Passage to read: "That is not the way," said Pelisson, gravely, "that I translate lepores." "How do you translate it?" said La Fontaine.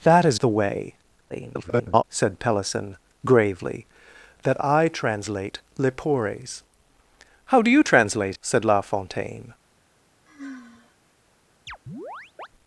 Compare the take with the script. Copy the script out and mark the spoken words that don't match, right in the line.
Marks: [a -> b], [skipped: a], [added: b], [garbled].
"That is [skipped: not] the way," [garbled] said Pelisson, gravely, "that I translate lepores." "How do you translate [skipped: it?"] said La Fontaine.